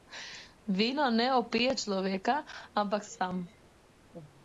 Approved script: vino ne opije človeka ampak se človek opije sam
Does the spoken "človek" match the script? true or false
false